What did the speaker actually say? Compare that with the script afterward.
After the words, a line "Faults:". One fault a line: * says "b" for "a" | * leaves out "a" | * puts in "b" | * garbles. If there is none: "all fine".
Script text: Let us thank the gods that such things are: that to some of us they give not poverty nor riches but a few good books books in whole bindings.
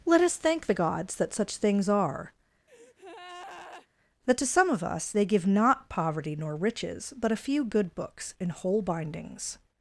Let us thank the gods that such things are: that to some of us they give not poverty nor riches but a few good books in whole bindings.
Faults:
* leaves out "books"